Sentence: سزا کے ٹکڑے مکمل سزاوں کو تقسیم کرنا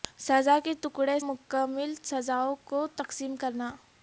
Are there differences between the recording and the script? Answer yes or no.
no